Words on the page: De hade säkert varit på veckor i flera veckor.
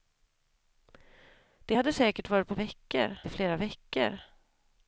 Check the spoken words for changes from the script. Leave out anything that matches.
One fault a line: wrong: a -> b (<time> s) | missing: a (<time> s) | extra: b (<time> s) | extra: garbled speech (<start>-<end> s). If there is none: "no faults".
no faults